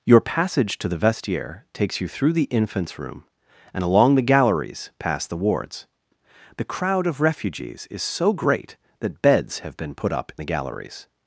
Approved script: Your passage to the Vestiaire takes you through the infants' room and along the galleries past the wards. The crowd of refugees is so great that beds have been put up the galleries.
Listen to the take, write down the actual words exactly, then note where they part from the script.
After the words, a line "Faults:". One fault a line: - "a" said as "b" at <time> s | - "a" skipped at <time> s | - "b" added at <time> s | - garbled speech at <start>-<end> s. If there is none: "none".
Your passage to the Vestiaire takes you through the infants' room and along the galleries past the wards. The crowd of refugees is so great that beds have been put up the galleries.
Faults:
none